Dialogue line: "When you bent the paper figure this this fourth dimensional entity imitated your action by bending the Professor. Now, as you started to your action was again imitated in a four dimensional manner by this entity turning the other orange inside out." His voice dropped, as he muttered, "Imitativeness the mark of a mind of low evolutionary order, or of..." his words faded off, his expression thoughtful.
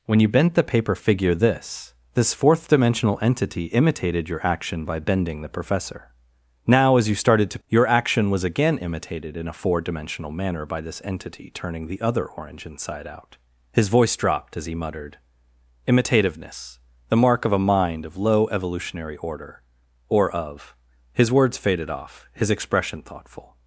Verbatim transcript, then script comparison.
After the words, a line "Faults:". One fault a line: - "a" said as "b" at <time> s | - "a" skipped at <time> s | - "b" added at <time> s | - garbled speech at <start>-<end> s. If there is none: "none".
"When you bent the paper figure this this fourth dimensional entity imitated your action by bending the Professor. Now, as you started to your action was again imitated in a four dimensional manner by this entity turning the other orange inside out." His voice dropped, as he muttered, "Imitativeness the mark of a mind of low evolutionary order, or of..." his words faded off, his expression thoughtful.
Faults:
none